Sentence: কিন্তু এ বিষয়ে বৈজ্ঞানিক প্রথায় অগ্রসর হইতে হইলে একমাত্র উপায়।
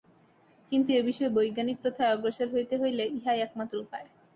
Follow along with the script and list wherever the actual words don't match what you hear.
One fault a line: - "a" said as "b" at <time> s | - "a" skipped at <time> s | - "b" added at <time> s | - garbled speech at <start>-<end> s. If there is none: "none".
- "ইহাই" added at 3.2 s